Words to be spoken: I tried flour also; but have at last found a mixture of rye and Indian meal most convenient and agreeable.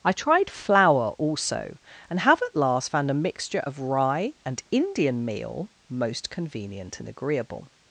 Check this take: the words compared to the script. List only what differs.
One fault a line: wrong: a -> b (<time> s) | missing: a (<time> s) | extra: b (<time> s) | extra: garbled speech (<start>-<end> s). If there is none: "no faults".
wrong: but -> and (2.1 s)